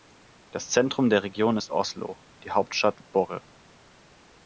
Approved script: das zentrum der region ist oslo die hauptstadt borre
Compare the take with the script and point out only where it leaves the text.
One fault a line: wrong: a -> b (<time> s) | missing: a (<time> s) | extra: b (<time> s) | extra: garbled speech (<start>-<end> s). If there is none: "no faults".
no faults